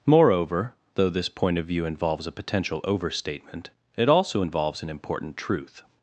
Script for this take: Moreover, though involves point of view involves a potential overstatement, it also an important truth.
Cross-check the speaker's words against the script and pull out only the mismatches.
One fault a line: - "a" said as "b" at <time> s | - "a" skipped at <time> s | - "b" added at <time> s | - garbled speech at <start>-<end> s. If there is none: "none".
- "involves" said as "this" at 1.1 s
- "involves" added at 4.4 s